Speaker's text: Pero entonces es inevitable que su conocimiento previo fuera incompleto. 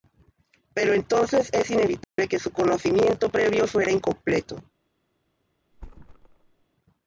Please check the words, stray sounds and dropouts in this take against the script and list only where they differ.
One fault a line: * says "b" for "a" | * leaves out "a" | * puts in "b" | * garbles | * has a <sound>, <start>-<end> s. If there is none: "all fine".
* has a dropout, 2.0-2.2 s
* has a thud, 5.7-6.7 s